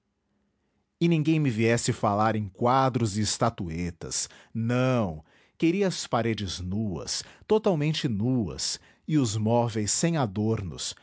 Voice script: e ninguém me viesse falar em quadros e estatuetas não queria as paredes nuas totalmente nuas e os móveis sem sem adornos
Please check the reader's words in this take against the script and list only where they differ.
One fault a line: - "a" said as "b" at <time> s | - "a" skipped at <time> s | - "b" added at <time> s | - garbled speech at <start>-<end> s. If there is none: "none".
- "sem" skipped at 10.2 s